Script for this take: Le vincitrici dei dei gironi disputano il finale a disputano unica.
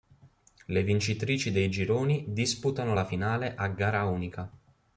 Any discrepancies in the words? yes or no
yes